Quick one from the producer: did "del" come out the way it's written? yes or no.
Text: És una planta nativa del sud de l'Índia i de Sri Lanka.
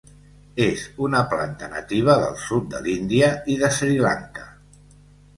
yes